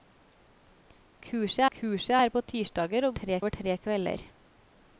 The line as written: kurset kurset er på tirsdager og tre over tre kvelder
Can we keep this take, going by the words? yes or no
yes